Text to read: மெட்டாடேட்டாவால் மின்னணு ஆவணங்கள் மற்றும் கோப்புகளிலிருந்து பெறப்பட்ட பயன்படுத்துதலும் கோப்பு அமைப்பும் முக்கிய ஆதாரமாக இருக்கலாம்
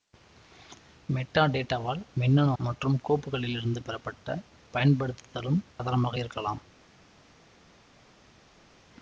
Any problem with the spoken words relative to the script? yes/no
yes